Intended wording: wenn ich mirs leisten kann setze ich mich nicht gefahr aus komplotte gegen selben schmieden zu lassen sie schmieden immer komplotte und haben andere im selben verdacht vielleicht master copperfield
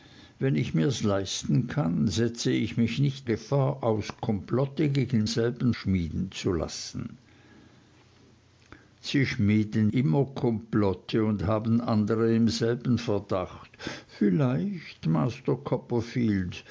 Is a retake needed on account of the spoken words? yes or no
no